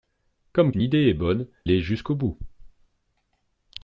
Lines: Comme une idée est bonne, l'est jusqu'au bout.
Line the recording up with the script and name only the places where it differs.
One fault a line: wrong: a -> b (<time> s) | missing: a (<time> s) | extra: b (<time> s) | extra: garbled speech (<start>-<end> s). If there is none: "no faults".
no faults